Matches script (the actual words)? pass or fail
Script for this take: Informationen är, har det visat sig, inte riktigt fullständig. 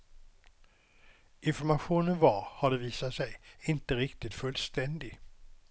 fail